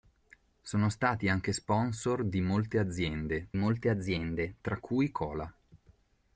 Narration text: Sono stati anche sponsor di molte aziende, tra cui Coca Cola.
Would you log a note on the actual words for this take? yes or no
yes